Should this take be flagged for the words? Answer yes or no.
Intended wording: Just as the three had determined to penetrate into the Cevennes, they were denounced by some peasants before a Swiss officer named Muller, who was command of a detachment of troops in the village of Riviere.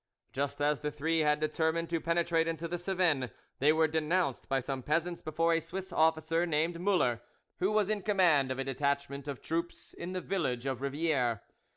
yes